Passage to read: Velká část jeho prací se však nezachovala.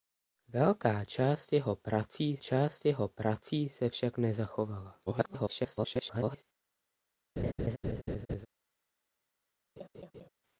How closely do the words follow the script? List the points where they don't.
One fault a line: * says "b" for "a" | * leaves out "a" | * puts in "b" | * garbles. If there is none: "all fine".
* puts in "část jeho prací"
* garbles